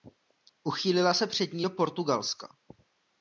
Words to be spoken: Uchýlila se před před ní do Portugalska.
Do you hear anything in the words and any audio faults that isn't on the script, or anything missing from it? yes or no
yes